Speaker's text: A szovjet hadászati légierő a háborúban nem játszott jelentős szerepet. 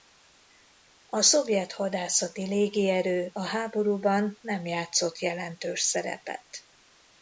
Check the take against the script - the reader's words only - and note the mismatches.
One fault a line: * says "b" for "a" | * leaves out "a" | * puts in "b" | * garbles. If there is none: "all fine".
all fine